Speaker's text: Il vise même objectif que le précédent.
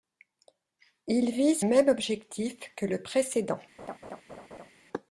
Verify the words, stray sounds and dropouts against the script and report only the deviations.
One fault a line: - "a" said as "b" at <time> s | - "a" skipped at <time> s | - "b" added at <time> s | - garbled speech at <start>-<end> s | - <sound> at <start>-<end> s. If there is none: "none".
- laugh at 3.8-4.7 s